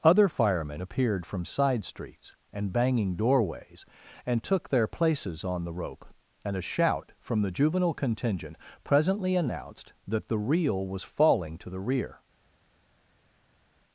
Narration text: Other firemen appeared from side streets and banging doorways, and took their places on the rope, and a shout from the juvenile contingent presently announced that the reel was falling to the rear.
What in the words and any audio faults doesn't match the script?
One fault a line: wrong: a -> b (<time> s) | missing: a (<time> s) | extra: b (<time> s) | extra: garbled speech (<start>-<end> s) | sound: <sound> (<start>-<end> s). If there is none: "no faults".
no faults